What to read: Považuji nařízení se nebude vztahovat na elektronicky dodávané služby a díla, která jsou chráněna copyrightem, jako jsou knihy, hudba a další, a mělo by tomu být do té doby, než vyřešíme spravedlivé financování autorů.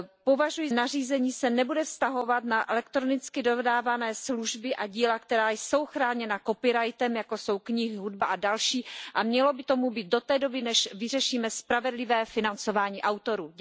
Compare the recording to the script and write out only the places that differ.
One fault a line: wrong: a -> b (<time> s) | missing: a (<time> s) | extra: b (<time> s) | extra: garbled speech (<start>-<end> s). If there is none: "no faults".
no faults